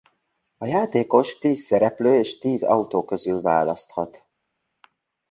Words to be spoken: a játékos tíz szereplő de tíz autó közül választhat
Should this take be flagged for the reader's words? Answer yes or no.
yes